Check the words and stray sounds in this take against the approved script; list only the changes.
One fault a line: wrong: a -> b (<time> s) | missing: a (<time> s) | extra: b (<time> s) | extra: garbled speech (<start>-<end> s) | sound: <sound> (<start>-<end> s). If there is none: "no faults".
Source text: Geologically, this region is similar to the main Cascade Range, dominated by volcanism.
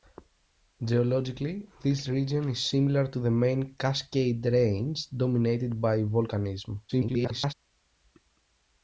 extra: garbled speech (6.9-7.5 s)